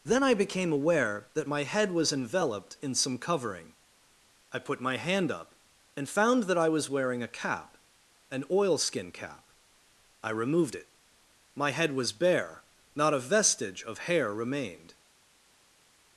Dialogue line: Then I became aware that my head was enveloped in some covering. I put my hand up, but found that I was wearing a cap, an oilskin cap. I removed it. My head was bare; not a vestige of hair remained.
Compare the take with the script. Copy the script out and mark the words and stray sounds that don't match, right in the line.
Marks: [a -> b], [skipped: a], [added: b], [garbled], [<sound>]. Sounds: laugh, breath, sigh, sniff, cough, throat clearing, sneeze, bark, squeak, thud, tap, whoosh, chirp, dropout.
Then I became aware that my head was enveloped in some covering. I put my hand up, [but -> and] found that I was wearing a cap, an oilskin cap. I removed it. My head was bare; not a vestige of hair remained.